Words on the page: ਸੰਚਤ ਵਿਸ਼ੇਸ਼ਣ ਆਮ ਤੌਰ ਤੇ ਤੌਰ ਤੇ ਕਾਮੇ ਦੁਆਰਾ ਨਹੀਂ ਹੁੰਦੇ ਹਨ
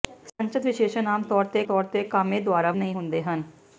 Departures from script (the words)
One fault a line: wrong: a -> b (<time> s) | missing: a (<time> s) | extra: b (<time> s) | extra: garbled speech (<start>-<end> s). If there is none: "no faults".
no faults